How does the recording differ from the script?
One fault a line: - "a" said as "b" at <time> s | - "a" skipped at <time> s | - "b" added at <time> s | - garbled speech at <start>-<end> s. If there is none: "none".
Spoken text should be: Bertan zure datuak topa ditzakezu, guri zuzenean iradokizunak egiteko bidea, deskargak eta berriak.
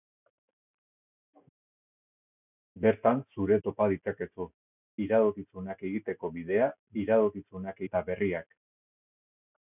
- "datuak" skipped at 3.6 s
- "guri zuzenean" skipped at 4.5 s
- "deskargak" said as "iradokizunak" at 7.0 s